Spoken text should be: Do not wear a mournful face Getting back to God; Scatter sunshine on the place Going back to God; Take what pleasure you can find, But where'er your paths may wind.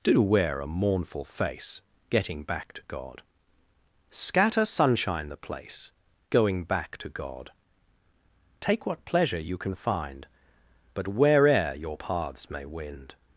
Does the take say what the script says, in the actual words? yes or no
no